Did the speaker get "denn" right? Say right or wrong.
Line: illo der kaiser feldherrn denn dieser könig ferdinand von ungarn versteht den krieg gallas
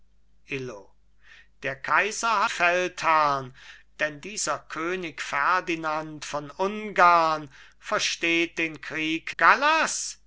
right